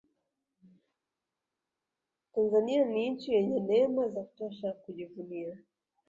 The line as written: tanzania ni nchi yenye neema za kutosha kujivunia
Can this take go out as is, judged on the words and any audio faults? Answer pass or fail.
pass